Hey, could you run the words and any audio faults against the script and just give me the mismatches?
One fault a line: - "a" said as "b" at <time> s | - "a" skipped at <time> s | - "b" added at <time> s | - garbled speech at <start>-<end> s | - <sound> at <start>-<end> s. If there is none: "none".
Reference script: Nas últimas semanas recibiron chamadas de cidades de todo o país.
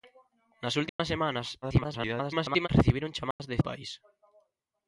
- dropout at 0.9-1.0 s
- garbled speech at 1.6-2.7 s
- dropout at 3.3-3.4 s
- "cidades de todo" skipped at 3.6 s